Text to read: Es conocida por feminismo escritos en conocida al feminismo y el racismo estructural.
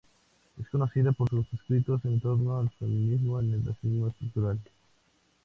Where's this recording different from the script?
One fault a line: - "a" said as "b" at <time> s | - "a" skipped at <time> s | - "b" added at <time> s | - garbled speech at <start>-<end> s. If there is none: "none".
- "feminismo" said as "sus" at 1.3 s
- "conocida" said as "torno" at 2.2 s